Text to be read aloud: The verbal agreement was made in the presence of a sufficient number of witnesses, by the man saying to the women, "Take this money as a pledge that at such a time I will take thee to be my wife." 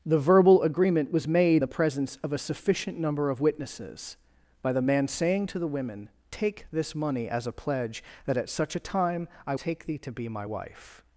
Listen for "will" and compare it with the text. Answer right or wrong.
wrong